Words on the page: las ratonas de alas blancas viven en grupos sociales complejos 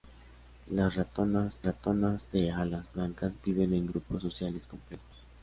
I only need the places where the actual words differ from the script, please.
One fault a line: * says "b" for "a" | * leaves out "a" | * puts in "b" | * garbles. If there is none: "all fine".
* puts in "ratonas"